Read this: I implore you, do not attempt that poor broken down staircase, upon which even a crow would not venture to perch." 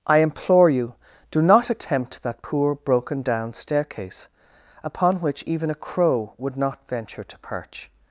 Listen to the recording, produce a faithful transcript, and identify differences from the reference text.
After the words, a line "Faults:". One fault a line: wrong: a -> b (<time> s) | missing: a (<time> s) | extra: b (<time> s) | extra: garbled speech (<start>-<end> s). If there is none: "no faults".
I implore you, do not attempt that poor broken down staircase, upon which even a crow would not venture to perch."
Faults:
no faults